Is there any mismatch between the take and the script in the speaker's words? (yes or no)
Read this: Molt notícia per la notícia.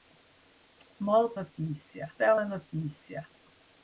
no